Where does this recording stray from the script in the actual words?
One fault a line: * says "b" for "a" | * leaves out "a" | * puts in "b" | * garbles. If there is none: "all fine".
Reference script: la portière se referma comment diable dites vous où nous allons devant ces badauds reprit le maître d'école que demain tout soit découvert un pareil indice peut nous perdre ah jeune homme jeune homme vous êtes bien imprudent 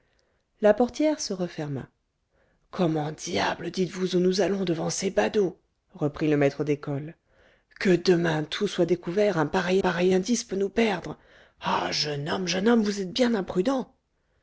* puts in "pareil"